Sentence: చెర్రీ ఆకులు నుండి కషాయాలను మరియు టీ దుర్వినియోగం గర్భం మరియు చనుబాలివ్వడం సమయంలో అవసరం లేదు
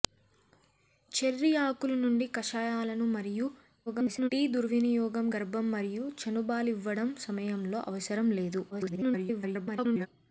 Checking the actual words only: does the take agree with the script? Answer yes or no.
no